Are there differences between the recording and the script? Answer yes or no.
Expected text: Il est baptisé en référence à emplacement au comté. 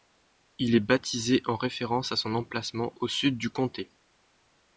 yes